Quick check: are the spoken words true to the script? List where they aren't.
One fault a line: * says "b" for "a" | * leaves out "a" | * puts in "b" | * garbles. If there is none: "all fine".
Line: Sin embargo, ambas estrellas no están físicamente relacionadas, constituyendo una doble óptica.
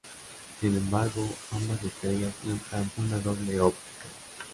* leaves out "físicamente relacionadas constituyendo"